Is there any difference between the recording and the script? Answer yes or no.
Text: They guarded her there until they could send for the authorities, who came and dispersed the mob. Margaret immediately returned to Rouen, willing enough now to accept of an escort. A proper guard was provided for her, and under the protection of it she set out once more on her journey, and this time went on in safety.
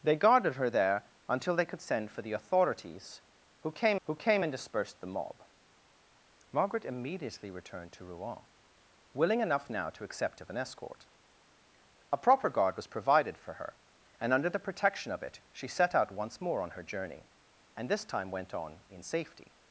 yes